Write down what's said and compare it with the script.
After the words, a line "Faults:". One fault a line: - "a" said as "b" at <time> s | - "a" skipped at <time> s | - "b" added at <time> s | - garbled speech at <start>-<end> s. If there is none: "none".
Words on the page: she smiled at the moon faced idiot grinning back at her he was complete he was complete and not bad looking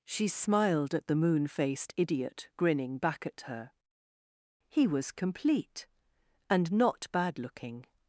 she smiled at the moon faced idiot grinning back at her he was complete and not bad looking
Faults:
- "he was complete" skipped at 5.9 s